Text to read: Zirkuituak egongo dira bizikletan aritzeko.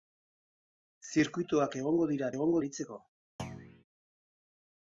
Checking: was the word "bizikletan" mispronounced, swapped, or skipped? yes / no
yes